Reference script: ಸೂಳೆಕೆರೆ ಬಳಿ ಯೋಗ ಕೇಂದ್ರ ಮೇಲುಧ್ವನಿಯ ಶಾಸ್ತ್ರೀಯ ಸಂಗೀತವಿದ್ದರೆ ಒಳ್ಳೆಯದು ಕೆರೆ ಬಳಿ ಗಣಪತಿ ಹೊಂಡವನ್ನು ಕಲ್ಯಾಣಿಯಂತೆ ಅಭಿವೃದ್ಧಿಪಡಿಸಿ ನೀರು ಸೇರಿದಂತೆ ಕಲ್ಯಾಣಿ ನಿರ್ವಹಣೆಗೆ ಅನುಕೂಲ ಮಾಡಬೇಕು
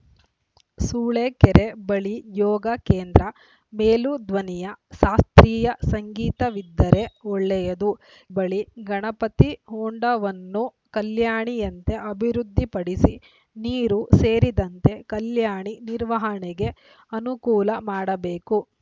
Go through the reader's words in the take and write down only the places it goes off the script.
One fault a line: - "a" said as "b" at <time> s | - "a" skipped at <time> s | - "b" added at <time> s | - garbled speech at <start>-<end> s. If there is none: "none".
- "ಕೆರೆ" skipped at 7.9 s